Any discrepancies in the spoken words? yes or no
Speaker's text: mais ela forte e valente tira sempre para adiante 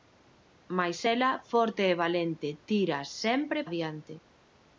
yes